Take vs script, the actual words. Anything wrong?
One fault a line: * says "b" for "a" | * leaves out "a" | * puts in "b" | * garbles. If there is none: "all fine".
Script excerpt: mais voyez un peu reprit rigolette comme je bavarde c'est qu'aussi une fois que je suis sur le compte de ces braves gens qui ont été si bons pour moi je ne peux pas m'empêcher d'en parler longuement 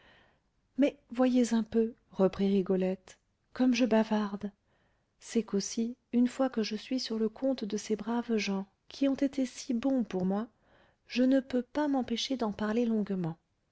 all fine